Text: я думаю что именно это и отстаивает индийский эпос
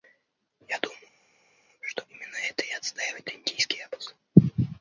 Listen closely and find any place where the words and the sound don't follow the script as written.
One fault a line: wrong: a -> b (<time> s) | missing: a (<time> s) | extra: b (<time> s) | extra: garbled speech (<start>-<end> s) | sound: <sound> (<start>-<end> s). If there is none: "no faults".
no faults